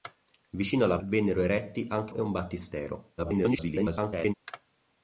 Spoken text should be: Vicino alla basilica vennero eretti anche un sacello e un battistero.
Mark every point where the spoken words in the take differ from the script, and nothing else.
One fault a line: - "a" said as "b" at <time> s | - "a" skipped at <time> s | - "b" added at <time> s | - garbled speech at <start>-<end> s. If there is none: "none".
- "basilica" skipped at 1.0 s
- "un sacello" skipped at 2.1 s
- garbled speech at 3.2-4.3 s